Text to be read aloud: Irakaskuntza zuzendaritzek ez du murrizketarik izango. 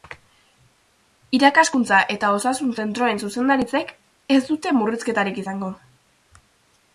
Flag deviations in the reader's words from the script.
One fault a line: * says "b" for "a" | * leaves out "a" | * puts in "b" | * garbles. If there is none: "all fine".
* puts in "eta osasun zentroen"
* says "dute" for "du"